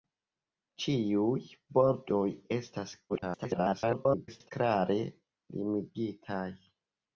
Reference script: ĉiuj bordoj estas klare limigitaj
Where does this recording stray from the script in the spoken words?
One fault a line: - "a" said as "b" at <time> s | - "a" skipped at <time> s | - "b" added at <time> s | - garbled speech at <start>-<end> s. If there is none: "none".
- garbled speech at 3.1-4.5 s